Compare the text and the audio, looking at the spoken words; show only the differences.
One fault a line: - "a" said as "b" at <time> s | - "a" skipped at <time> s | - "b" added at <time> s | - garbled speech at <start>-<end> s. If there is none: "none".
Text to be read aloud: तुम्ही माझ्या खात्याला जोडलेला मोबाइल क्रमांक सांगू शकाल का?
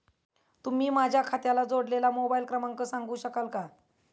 none